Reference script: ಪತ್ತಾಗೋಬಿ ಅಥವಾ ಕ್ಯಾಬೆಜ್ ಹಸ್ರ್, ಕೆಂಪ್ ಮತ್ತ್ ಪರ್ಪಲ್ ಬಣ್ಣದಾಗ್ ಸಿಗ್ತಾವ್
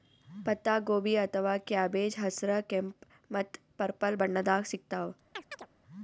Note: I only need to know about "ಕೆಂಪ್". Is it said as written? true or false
true